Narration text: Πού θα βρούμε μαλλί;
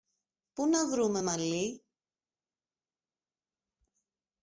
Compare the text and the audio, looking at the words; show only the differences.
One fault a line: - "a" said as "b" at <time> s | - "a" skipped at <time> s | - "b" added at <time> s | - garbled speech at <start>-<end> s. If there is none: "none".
- "θα" said as "να" at 0.7 s